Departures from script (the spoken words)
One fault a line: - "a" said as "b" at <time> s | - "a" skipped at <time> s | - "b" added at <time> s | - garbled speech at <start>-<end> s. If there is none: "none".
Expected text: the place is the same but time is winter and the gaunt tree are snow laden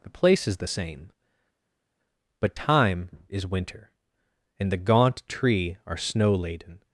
none